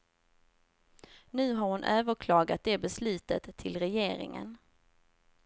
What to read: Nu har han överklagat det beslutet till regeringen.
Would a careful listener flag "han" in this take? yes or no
yes